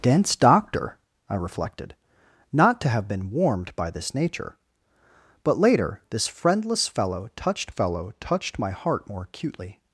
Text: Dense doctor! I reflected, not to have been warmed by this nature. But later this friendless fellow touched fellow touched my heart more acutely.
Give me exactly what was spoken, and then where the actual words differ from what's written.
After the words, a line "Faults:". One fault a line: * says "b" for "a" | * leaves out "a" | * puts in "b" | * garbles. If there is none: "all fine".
Dense doctor! I reflected, not to have been warmed by this nature. But later this friendless fellow touched fellow touched my heart more acutely.
Faults:
all fine